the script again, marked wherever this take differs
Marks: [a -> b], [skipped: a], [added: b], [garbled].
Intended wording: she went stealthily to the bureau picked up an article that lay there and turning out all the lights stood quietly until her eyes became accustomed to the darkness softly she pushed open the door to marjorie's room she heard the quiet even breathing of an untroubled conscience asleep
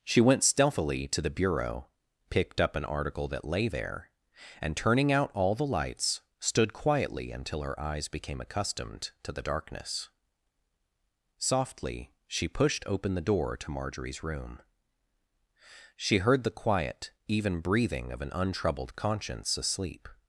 she went stealthily to the bureau picked up an article that lay there and turning out all the lights stood quietly until her eyes became accustomed to the darkness softly she pushed open the door to marjorie's room she heard the quiet even breathing of an untroubled conscience asleep